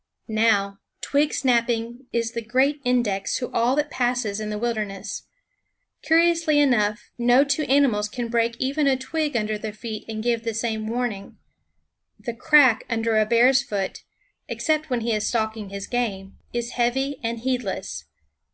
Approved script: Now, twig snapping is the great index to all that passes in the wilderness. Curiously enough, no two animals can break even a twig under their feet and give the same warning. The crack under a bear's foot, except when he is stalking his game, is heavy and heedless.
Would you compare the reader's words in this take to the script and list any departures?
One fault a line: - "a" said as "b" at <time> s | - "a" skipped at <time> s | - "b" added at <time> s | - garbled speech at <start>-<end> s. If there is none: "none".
none